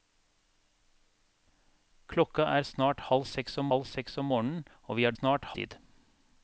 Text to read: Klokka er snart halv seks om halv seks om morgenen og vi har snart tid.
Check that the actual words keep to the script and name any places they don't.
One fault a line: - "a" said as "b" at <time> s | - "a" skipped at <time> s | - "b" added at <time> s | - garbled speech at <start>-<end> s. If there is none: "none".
none